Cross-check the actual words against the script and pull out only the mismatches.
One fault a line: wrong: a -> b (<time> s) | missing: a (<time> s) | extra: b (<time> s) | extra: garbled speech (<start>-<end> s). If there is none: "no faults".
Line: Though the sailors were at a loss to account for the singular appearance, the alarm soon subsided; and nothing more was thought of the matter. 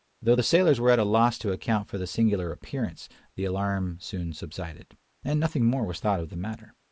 no faults